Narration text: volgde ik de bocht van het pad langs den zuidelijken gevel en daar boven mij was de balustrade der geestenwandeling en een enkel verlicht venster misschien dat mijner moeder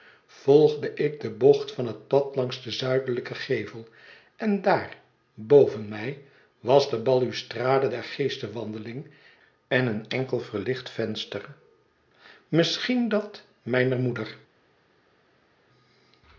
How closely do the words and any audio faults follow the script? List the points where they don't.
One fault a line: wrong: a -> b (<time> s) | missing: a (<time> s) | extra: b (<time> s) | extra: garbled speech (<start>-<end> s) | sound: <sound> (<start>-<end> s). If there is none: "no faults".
no faults